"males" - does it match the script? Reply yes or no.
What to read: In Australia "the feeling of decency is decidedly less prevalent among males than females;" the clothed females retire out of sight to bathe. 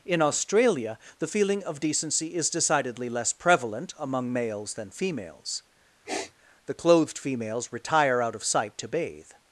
yes